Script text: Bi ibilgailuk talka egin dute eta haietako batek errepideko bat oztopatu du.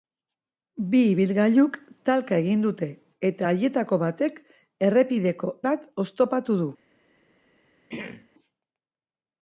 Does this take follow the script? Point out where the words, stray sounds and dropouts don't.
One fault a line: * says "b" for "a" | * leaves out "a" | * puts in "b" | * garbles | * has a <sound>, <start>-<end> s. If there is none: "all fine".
* has a throat clearing, 7.9-8.3 s